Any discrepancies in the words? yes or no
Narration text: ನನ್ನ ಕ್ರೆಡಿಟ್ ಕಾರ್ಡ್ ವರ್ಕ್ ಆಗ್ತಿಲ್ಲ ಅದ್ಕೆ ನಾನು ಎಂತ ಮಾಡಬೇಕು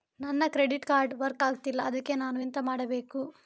no